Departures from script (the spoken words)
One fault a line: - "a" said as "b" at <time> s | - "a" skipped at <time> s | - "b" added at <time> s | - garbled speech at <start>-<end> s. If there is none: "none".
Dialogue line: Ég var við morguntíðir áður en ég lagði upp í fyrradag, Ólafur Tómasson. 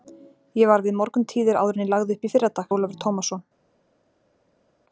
none